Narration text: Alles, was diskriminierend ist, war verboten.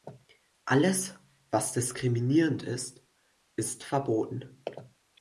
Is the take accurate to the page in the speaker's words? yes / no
no